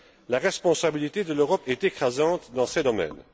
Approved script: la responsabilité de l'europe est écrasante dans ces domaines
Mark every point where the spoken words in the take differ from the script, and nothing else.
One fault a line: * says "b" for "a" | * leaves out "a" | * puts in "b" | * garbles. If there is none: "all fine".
all fine